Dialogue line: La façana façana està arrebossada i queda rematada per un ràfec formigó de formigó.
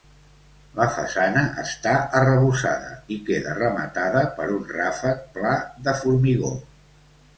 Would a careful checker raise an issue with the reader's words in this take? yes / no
yes